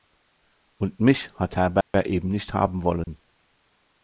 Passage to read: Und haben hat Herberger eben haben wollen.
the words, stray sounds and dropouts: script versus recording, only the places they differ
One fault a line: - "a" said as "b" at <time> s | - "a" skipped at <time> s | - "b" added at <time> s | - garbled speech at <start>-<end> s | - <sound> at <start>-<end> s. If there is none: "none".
- "haben" said as "mich" at 1.0 s
- dropout at 1.8-1.9 s
- "nicht" added at 2.3 s
- dropout at 3.0-3.1 s